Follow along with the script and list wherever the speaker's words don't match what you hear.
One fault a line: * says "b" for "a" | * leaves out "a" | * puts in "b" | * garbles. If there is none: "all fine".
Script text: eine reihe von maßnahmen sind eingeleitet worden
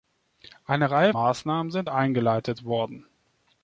* leaves out "von"